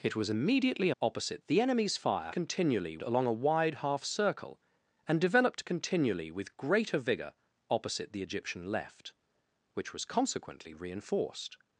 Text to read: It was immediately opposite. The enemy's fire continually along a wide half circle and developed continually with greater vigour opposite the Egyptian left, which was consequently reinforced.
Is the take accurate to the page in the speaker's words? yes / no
yes